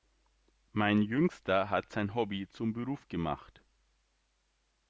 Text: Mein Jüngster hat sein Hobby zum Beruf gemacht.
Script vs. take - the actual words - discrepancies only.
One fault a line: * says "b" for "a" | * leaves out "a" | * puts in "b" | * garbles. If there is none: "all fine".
all fine